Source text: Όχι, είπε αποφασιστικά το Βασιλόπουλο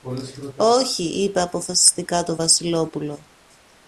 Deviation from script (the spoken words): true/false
false